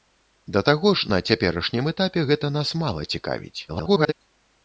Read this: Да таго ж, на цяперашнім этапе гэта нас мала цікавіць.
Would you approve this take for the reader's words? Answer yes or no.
no